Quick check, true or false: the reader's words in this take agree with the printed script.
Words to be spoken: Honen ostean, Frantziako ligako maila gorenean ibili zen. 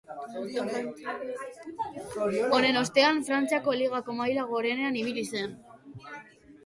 true